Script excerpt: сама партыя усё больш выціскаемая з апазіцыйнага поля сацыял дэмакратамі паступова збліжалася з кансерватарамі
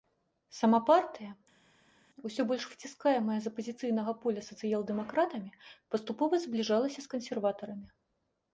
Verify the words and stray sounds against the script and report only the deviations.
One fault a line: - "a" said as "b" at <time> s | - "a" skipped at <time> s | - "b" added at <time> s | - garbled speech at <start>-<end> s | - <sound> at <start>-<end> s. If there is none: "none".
none